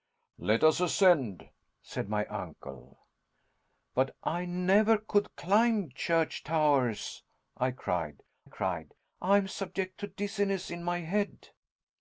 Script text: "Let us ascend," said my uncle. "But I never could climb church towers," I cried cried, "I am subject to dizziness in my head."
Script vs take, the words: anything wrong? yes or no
no